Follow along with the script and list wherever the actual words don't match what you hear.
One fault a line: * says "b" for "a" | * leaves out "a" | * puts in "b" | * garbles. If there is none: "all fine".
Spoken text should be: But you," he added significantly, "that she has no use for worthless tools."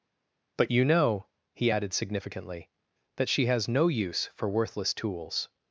* puts in "know"